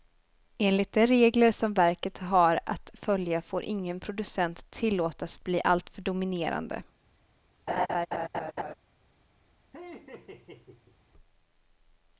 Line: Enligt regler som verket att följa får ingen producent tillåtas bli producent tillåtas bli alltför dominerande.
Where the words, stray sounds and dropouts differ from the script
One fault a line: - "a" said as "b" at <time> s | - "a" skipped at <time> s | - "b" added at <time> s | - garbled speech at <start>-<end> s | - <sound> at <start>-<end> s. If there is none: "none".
- "de" added at 0.9 s
- "har" added at 2.2 s
- "producent tillåtas bli" skipped at 5.6 s
- laugh at 7.7-8.7 s
- laugh at 9.7-11.0 s